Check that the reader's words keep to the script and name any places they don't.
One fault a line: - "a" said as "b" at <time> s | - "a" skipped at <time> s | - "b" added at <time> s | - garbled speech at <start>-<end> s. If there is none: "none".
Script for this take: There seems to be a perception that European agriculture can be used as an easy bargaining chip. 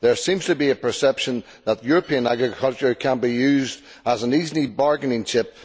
none